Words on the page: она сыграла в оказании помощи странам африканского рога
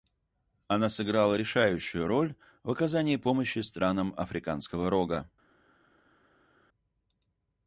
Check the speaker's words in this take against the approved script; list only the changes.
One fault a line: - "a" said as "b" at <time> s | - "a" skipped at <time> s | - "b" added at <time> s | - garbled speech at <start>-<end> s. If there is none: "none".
- "решающую роль" added at 1.3 s